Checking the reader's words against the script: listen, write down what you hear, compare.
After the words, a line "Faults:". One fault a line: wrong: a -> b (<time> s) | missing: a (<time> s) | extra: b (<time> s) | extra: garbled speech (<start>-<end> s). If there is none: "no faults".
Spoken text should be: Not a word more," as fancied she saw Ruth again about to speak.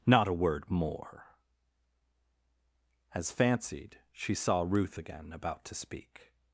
Not a word more," as fancied she saw Ruth again about to speak.
Faults:
no faults